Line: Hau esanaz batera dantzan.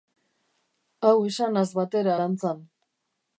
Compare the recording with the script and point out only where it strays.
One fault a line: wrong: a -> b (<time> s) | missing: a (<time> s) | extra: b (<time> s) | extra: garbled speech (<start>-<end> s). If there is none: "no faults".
no faults